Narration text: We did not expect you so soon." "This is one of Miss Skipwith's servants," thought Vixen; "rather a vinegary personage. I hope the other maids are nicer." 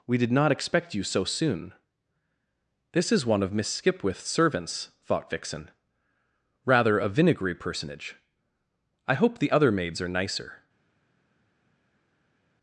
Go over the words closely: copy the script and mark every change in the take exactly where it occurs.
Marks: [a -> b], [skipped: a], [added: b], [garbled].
We did not expect you so soon." "This is one of Miss Skipwith's servants," thought Vixen; "rather a vinegary personage. I hope the other maids are nicer."